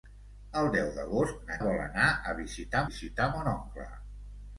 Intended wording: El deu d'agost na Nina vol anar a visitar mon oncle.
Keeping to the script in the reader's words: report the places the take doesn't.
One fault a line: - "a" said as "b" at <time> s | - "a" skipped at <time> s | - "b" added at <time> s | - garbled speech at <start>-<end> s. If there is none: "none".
- "Nina" skipped at 1.6 s
- "visitar" added at 2.9 s